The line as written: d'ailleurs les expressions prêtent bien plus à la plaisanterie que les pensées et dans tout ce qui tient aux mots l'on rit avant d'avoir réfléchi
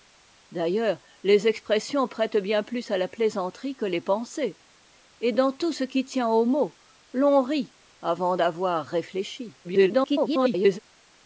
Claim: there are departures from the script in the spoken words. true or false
true